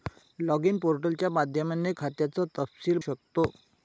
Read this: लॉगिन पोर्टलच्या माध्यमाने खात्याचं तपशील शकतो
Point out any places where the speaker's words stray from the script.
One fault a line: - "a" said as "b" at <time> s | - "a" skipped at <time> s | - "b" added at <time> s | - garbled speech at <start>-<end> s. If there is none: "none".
none